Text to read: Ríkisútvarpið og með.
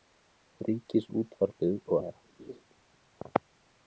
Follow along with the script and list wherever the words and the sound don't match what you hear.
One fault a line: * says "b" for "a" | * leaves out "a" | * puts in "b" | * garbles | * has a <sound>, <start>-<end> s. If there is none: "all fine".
* has a laugh, 2.4-2.6 s